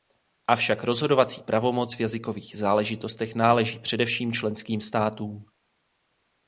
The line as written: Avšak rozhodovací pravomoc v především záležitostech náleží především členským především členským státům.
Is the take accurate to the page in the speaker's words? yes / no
no